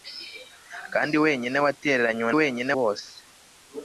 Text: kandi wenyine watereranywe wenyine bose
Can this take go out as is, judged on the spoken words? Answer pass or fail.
pass